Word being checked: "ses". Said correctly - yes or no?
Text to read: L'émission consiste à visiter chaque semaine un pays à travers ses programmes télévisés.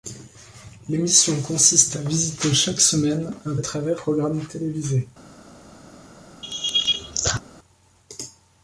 no